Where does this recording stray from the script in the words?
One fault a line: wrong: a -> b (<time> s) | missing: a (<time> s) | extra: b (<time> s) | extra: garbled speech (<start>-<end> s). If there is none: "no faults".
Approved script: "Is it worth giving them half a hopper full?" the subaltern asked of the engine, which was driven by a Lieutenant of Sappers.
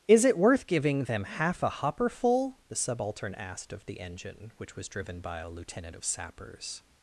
no faults